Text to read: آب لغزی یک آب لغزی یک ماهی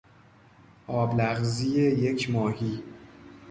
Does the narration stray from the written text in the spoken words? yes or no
yes